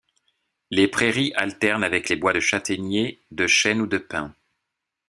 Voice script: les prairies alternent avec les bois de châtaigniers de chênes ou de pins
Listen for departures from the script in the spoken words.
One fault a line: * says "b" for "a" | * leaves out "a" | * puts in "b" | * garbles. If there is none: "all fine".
all fine